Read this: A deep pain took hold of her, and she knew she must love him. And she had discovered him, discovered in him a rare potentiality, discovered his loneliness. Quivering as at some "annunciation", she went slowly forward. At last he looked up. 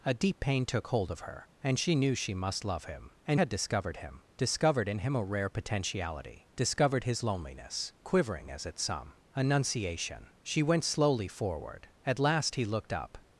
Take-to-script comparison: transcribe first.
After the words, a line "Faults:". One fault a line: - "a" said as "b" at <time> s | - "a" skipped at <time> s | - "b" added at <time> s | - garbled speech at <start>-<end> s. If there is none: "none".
A deep pain took hold of her, and she knew she must love him. And had discovered him, discovered in him a rare potentiality, discovered his loneliness. Quivering as at some "annunciation", she went slowly forward. At last he looked up.
Faults:
- "she" skipped at 3.4 s